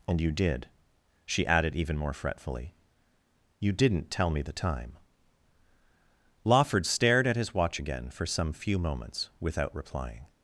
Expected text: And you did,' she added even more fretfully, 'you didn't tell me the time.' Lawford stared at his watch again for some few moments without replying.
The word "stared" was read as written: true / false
true